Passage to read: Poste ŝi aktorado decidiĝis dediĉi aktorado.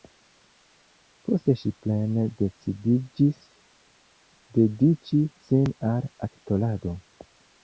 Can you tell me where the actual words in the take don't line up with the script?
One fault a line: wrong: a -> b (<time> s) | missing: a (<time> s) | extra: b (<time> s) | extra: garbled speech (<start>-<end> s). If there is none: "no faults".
wrong: aktorado -> plene (1.9 s)
extra: sin al (5.5 s)